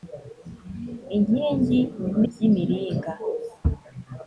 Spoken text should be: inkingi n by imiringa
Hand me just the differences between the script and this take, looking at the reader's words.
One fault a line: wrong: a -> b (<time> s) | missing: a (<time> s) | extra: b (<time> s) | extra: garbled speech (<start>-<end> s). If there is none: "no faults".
no faults